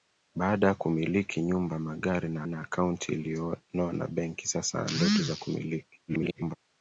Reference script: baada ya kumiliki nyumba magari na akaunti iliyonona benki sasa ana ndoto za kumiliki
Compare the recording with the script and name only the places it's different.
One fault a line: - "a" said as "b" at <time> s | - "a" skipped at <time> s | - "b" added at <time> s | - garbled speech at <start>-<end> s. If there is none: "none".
- "na" added at 2.5 s
- "ana" skipped at 4.8 s
- garbled speech at 6.1-6.6 s